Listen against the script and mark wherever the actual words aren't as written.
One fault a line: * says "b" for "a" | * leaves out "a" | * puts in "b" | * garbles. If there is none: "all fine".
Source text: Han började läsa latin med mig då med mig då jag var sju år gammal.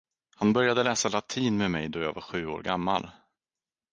* leaves out "med mig då"